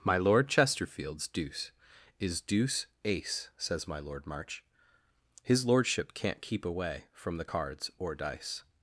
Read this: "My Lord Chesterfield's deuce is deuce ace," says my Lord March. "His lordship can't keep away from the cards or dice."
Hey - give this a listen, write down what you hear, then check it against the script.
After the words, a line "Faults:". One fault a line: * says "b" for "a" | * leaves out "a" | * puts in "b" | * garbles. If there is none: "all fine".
"My Lord Chesterfield's deuce is deuce ace," says my Lord March. "His lordship can't keep away from the cards or dice."
Faults:
all fine